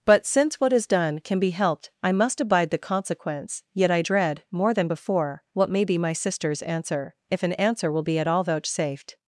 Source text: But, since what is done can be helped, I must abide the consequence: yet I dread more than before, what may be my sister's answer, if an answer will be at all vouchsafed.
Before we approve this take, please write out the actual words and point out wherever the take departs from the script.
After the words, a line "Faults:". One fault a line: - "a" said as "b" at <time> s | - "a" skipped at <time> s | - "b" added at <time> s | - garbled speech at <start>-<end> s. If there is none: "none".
But, since what is done can be helped, I must abide the consequence: yet I dread more than before, what may be my sister's answer, if an answer will be at all vouchsafed.
Faults:
none